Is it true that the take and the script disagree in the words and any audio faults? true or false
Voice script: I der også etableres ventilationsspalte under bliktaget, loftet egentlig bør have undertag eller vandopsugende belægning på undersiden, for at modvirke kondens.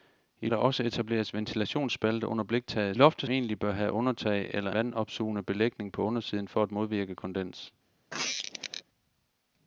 true